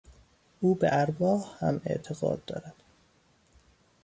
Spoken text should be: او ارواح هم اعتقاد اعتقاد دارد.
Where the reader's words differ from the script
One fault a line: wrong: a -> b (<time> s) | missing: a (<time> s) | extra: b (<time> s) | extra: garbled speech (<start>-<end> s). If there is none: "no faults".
extra: به (0.8 s)
missing: اعتقاد (2.5 s)